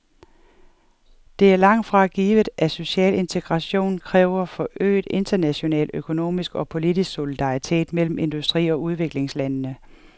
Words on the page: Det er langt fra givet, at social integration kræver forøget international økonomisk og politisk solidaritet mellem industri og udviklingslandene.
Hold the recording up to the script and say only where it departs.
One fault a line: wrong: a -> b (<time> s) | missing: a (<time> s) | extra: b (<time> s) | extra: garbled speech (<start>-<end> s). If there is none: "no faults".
no faults